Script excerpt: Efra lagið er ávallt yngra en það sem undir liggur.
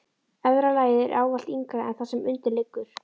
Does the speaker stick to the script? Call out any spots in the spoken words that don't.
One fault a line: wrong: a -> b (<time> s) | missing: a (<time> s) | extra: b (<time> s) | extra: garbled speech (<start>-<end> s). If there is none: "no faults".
no faults